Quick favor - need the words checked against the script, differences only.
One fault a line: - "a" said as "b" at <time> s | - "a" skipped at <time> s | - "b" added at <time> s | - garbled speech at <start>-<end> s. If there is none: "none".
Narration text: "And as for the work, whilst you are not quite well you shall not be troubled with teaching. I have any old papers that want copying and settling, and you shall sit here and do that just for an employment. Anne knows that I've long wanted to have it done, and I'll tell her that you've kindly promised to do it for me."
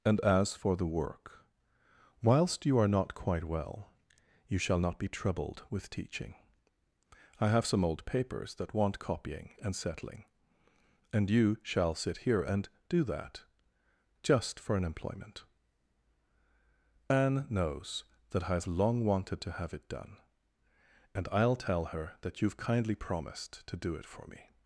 - "any" said as "some" at 7.7 s